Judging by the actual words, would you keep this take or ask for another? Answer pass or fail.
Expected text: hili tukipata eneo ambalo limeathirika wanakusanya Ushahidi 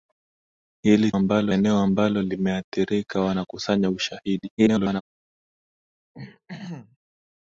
fail